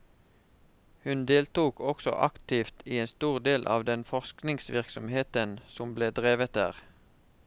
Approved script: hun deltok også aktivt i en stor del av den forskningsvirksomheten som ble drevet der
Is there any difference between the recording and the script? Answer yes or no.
no